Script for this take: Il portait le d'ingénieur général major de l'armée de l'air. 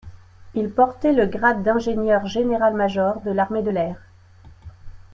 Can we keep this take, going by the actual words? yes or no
no